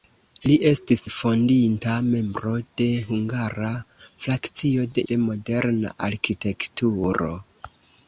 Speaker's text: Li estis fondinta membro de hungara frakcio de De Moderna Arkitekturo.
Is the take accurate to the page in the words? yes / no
yes